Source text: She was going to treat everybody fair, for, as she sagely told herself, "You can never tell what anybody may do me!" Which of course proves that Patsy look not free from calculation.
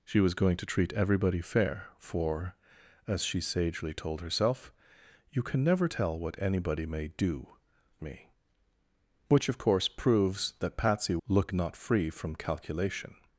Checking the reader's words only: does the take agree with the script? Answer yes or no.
yes